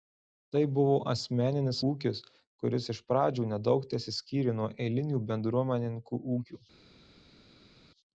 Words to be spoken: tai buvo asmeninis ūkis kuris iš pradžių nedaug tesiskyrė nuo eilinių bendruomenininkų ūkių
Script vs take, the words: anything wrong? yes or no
no